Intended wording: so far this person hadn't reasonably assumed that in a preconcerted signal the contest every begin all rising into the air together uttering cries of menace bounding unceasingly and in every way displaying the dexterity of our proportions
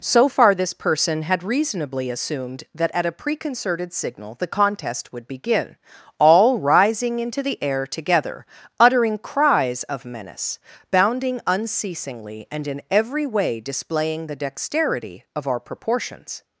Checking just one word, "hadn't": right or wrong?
wrong